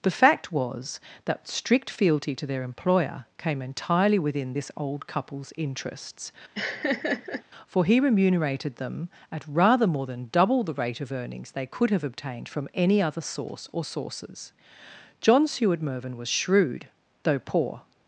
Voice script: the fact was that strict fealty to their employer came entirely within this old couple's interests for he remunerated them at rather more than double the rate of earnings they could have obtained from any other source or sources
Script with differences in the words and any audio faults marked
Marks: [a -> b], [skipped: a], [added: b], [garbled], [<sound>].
the fact was that strict fealty to their employer came entirely within this old couple's interests [laugh] for he remunerated them at rather more than double the rate of earnings they could have obtained from any other source or sources [added: john seward mervyn was shrewd though poor]